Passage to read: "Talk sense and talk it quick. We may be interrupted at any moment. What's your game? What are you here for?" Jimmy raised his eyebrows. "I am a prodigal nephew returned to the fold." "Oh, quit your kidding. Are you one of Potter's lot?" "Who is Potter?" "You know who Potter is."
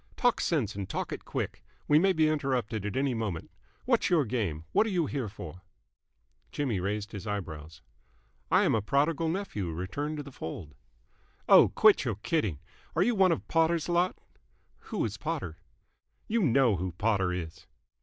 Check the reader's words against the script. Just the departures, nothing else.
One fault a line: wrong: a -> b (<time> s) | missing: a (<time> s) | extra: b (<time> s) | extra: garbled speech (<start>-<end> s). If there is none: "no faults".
no faults